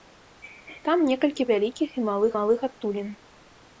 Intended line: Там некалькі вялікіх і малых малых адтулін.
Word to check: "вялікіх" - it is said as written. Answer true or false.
true